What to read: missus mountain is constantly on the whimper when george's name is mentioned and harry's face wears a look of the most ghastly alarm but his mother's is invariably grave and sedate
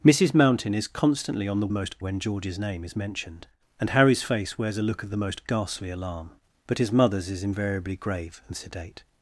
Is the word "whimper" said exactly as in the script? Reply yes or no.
no